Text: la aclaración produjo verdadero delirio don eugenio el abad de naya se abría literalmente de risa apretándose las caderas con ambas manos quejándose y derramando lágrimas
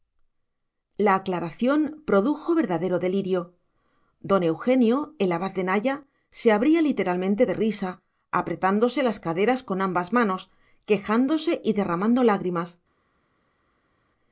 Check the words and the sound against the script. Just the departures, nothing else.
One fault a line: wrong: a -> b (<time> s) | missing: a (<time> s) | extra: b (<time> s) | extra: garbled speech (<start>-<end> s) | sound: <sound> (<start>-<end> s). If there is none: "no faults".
no faults